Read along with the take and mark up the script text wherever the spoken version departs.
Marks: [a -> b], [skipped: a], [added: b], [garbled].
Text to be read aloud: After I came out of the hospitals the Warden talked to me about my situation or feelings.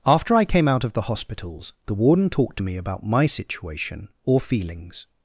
After I came out of the hospitals the Warden talked to me about my situation or feelings.